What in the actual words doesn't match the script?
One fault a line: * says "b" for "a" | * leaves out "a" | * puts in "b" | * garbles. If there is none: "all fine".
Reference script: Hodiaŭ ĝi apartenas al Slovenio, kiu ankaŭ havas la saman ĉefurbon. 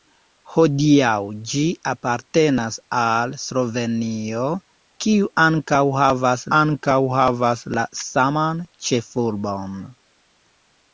* puts in "ankaŭ havas"